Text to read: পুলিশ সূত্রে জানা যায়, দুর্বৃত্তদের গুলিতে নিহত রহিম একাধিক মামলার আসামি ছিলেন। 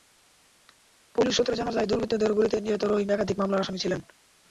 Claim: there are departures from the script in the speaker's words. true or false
false